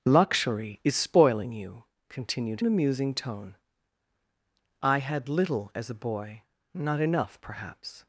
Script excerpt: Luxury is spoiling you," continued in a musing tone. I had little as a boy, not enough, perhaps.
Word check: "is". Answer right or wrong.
right